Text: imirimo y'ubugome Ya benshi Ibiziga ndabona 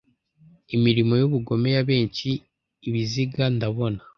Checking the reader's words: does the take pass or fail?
pass